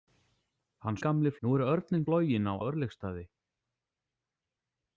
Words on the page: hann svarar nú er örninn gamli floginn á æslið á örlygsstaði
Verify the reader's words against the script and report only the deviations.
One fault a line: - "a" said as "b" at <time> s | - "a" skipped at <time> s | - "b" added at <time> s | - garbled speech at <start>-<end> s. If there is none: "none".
- "svarar" said as "gamli" at 1.1 s
- "gamli" skipped at 2.1 s
- "æslið" skipped at 2.5 s